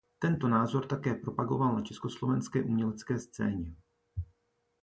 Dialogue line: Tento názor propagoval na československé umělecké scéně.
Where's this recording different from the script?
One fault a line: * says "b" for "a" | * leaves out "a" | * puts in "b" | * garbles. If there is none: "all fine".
* puts in "také"